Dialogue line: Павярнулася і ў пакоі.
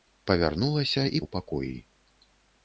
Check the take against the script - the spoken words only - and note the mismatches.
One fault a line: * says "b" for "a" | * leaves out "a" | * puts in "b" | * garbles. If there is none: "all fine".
all fine